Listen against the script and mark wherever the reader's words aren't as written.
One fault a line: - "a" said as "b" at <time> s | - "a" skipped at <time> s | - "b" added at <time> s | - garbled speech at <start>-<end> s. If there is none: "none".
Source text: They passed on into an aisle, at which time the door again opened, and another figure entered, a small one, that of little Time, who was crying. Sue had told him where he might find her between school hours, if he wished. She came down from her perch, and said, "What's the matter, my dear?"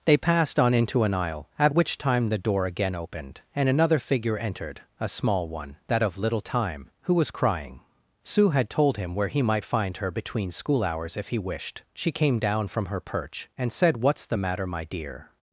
none